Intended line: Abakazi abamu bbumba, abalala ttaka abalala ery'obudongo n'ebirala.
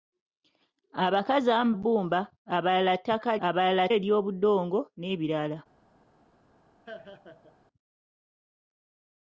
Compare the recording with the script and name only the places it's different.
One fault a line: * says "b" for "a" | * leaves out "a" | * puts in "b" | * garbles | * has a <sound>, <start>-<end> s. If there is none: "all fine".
* has a laugh, 6.9-7.6 s